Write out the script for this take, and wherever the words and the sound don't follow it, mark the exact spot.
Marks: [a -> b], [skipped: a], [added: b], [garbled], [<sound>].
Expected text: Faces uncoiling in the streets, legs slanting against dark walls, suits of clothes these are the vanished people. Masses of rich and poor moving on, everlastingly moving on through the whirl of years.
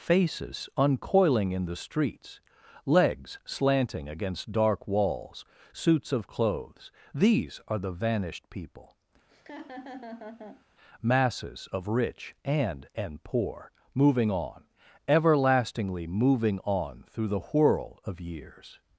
Faces uncoiling in the streets, legs slanting against dark walls, suits of clothes these are the vanished people. [laugh] Masses of rich and [added: and] poor moving on, everlastingly moving on through the whirl of years.